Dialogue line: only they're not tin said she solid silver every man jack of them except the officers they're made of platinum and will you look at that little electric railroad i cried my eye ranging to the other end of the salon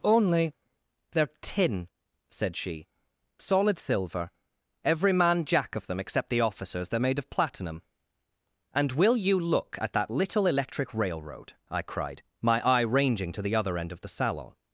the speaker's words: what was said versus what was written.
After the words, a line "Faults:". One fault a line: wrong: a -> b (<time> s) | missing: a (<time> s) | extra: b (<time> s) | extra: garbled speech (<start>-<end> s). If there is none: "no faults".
only they're tin said she solid silver every man jack of them except the officers they're made of platinum and will you look at that little electric railroad i cried my eye ranging to the other end of the salon
Faults:
missing: not (1.3 s)